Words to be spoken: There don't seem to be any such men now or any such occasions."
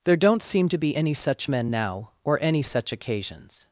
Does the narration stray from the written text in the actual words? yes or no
no